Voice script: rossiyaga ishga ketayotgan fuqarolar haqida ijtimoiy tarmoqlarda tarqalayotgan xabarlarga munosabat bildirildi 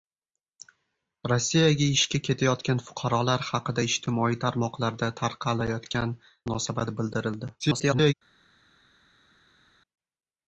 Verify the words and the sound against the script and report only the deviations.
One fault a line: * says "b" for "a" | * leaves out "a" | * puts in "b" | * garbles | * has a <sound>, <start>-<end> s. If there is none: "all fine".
* leaves out "xabarlarga"
* garbles